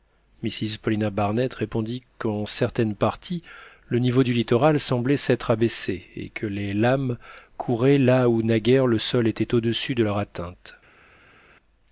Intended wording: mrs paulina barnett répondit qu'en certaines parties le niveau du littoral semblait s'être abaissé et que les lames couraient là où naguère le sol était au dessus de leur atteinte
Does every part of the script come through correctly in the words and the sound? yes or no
yes